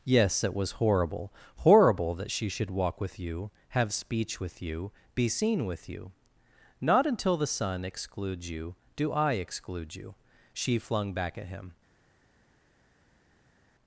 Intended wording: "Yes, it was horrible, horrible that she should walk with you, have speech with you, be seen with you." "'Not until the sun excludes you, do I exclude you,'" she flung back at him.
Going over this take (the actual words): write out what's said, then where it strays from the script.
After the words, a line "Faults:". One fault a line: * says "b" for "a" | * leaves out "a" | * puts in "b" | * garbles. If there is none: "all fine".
"Yes, it was horrible, horrible that she should walk with you, have speech with you, be seen with you." "'Not until the sun excludes you, do I exclude you,'" she flung back at him.
Faults:
all fine